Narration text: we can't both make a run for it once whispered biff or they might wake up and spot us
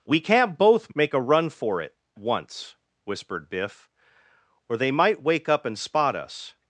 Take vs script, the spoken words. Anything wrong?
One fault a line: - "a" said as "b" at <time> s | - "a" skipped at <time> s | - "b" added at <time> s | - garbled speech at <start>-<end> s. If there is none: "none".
none